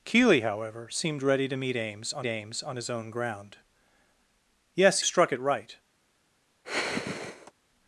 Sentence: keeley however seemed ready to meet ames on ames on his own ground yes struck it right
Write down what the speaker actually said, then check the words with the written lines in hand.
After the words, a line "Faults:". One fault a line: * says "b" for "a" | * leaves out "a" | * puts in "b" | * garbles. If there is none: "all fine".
keeley however seemed ready to meet ames on ames on his own ground yes struck it right
Faults:
all fine